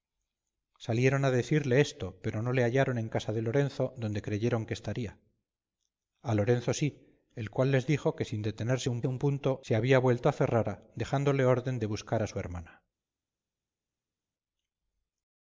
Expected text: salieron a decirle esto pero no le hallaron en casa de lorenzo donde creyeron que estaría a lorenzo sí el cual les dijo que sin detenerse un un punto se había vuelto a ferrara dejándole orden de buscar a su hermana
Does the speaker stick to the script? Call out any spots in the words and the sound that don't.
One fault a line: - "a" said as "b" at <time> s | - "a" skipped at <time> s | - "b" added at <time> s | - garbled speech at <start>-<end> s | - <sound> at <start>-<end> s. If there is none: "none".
none